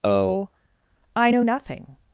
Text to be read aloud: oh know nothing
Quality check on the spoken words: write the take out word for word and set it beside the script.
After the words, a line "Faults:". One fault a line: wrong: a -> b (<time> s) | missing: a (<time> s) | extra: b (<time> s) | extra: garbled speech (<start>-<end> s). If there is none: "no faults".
oh i know nothing
Faults:
extra: i (1.1 s)